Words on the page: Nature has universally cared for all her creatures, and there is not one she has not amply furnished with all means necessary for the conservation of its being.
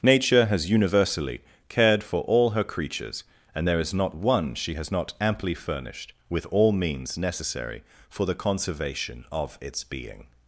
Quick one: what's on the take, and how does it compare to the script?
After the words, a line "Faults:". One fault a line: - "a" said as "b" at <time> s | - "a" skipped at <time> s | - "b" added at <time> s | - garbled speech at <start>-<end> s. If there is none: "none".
Nature has universally cared for all her creatures, and there is not one she has not amply furnished with all means necessary for the conservation of its being.
Faults:
none